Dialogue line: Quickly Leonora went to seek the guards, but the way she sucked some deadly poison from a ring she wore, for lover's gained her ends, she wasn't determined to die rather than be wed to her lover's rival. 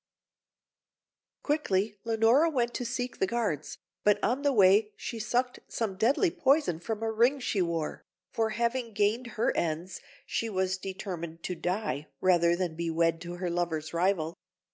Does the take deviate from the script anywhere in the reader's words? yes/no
yes